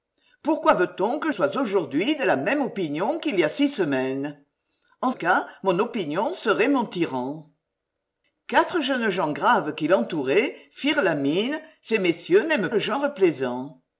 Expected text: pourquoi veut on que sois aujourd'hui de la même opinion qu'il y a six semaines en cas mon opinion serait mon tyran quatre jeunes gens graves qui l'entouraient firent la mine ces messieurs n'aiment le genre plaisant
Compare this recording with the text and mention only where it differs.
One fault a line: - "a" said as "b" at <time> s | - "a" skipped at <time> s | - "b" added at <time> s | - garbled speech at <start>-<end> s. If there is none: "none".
none